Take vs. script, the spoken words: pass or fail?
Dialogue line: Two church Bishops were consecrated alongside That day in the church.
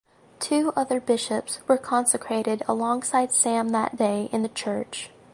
fail